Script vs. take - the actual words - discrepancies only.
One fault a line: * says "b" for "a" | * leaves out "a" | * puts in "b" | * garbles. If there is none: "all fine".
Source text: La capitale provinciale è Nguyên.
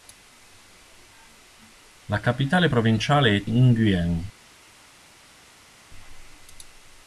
all fine